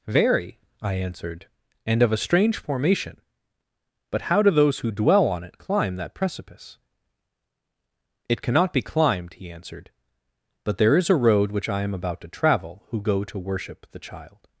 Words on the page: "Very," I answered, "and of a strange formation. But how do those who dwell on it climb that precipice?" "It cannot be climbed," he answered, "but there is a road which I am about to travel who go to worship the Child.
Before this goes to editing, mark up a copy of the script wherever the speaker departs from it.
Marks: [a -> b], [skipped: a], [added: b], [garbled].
"Very," I answered, "and of a strange formation. But how do those who dwell on it climb that precipice?" "It cannot be climbed," he answered, "but there is a road which I am about to travel who go to worship the Child.